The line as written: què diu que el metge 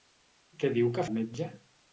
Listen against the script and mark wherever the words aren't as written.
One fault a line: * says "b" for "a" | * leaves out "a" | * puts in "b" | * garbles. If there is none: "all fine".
all fine